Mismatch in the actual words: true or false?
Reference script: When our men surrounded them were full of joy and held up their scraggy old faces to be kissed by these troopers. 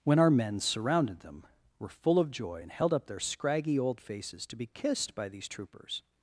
false